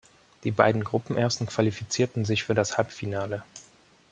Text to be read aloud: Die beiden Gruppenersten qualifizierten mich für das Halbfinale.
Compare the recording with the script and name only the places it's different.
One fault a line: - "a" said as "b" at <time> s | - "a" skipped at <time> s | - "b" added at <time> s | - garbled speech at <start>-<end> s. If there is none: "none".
- "mich" said as "sich" at 2.2 s